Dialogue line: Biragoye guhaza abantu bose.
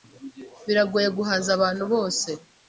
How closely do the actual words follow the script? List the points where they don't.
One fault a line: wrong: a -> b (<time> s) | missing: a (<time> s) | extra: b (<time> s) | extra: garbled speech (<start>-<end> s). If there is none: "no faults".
no faults